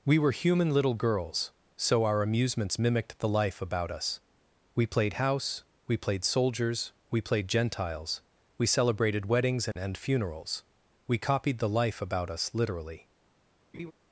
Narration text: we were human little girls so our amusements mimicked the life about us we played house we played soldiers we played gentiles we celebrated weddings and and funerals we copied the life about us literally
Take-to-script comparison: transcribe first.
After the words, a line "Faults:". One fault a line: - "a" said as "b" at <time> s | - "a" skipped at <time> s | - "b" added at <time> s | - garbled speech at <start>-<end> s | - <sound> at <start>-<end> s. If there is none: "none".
we were human little girls so our amusements mimicked the life about us we played house we played soldiers we played gentiles we celebrated weddings and and funerals we copied the life about us literally
Faults:
- laugh at 13.7-13.9 s